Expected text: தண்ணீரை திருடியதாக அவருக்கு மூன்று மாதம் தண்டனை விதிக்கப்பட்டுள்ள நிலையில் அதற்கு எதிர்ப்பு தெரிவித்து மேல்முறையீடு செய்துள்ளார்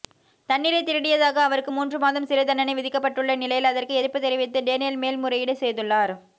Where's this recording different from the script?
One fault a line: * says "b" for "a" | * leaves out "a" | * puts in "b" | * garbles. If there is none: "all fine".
* puts in "சிறை"
* puts in "டேனியல்"